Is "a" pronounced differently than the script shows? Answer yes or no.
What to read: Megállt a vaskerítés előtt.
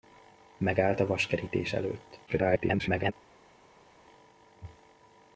no